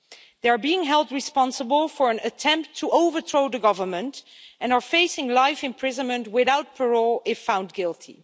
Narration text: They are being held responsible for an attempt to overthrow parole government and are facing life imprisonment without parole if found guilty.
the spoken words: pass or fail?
fail